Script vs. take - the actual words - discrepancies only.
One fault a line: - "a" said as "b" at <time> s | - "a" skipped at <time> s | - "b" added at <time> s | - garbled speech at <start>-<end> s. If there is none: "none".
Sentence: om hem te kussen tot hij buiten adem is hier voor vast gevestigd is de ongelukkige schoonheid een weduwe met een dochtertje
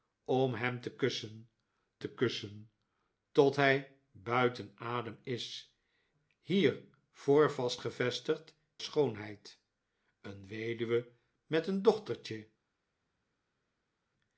- "te kussen" added at 2.0 s
- "is de ongelukkige" skipped at 8.6 s